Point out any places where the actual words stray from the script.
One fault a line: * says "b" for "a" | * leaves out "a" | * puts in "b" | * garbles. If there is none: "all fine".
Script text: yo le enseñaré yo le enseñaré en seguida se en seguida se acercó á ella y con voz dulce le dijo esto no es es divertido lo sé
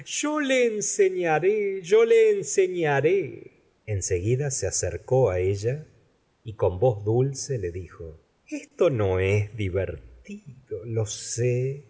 * leaves out "en seguida se"
* leaves out "es"